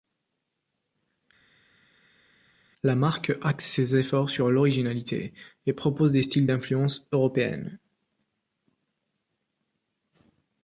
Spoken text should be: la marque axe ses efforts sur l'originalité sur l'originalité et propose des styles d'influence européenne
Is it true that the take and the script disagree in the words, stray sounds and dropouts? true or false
true